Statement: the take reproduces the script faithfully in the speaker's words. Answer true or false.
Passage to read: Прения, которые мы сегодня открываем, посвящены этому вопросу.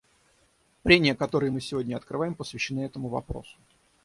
true